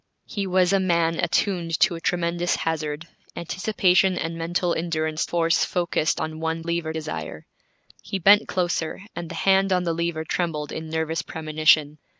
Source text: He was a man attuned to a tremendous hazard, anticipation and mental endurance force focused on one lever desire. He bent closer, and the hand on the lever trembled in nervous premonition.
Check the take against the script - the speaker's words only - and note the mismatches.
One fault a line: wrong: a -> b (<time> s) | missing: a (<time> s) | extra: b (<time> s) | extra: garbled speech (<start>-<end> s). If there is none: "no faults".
no faults